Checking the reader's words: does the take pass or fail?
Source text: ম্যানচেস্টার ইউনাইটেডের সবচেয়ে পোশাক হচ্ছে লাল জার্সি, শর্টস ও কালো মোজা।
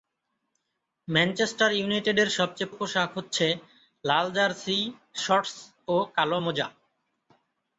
pass